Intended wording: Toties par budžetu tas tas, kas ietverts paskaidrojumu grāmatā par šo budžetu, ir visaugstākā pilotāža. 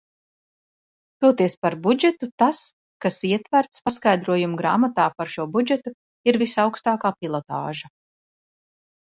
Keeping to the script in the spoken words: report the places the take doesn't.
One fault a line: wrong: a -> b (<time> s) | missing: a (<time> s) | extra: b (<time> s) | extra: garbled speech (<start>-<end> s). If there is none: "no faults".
missing: tas (2.6 s)